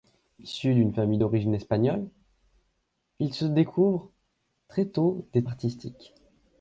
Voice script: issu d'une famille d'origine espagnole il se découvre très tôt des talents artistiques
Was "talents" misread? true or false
true